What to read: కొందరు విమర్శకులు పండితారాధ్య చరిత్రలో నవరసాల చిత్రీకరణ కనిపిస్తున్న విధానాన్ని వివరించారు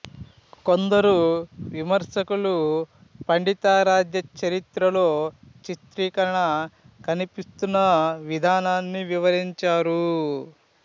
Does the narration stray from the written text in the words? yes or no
yes